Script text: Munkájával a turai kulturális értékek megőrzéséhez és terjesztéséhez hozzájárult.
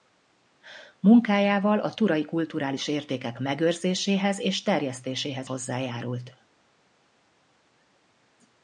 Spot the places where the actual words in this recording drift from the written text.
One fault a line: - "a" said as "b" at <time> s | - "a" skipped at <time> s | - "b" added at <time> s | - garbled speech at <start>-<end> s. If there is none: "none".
none